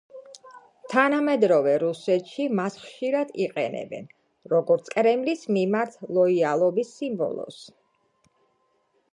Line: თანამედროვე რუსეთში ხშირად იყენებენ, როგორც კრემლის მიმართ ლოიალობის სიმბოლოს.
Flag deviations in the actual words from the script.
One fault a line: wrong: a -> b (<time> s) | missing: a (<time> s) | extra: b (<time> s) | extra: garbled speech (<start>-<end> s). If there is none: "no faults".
extra: მას (2.6 s)